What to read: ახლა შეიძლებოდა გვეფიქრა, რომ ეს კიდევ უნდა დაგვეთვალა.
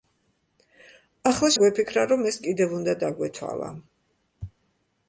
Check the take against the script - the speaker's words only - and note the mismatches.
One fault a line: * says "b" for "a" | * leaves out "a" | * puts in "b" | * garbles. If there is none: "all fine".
* leaves out "შეიძლებოდა"